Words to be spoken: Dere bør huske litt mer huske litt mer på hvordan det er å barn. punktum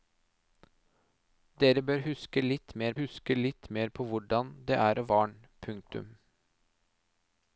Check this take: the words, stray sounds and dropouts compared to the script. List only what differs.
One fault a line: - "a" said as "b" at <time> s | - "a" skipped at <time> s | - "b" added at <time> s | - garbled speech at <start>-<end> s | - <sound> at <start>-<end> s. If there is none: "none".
none